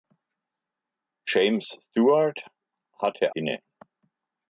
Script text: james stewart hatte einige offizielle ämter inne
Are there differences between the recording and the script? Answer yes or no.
yes